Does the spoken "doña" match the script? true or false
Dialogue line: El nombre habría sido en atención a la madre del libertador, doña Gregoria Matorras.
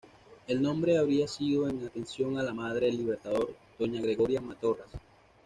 true